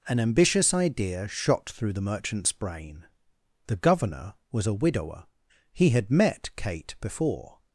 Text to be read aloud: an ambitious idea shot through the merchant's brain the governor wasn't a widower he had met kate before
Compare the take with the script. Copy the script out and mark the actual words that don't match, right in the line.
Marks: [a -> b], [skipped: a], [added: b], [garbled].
an ambitious idea shot through the merchant's brain the governor [wasn't -> was] a widower he had met kate before